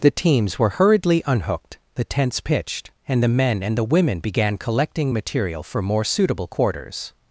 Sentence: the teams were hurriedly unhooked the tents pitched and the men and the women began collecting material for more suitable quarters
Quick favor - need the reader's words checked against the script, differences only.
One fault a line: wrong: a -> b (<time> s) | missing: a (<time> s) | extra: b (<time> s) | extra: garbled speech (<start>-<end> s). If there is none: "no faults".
no faults